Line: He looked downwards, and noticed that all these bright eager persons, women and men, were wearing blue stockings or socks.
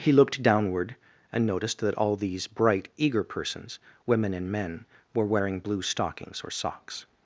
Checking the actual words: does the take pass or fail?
fail